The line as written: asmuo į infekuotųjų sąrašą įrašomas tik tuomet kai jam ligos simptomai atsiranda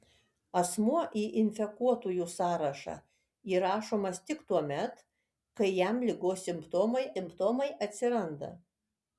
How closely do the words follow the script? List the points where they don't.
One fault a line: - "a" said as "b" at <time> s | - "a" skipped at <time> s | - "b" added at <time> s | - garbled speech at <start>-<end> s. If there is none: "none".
- "simptomai" added at 7.2 s